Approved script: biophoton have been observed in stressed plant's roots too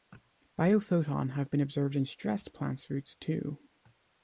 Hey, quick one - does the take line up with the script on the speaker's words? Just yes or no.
yes